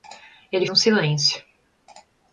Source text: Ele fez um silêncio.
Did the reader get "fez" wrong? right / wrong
wrong